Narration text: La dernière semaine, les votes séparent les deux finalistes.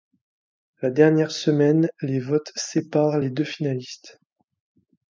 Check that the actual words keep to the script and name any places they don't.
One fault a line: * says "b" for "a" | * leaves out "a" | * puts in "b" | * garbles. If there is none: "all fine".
all fine